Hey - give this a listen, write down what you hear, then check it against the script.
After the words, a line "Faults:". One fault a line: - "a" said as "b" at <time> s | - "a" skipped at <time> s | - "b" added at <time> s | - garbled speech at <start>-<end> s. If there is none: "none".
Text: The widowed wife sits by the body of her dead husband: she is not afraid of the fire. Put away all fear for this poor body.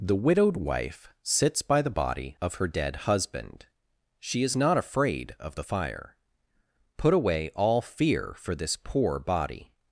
The widowed wife sits by the body of her dead husband: she is not afraid of the fire. Put away all fear for this poor body.
Faults:
none